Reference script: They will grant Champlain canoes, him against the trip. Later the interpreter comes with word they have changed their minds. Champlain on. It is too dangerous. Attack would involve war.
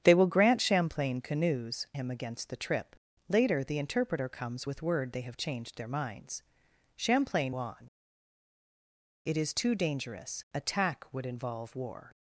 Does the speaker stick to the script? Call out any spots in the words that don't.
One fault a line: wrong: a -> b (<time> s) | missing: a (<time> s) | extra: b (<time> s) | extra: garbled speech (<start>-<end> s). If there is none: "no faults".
no faults